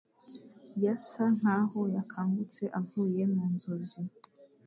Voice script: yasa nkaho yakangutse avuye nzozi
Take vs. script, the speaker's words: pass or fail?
fail